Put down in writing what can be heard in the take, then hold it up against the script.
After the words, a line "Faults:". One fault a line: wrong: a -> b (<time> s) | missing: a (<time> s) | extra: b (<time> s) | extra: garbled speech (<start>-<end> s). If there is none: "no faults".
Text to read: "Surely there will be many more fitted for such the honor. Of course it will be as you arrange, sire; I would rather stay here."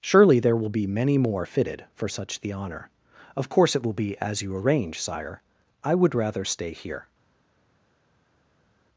"Surely there will be many more fitted for such the honor. Of course it will be as you arrange, sire; I would rather stay here."
Faults:
no faults